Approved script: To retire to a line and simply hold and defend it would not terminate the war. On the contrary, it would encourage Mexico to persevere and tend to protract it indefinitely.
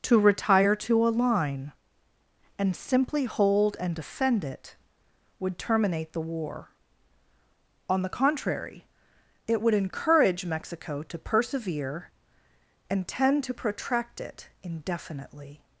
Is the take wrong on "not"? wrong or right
wrong